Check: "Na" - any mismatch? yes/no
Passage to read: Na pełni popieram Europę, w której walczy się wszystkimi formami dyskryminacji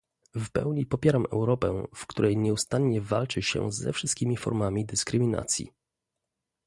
yes